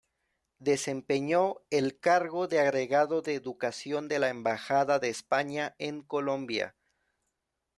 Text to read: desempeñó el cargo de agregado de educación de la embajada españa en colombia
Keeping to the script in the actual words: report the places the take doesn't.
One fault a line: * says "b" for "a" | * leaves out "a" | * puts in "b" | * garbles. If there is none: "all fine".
* puts in "de"